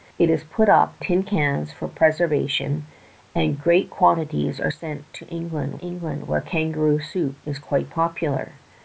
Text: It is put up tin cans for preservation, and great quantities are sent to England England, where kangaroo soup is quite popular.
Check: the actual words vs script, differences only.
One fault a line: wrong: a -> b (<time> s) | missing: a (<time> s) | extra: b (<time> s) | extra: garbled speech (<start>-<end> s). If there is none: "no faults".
no faults